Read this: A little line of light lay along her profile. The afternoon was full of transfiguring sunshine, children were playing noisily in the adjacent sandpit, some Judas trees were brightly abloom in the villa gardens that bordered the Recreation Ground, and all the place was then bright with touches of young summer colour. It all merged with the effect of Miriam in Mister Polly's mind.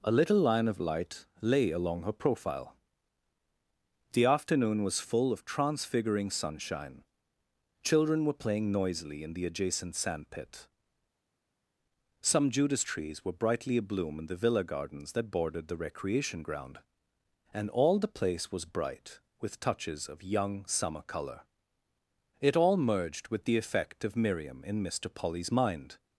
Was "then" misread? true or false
true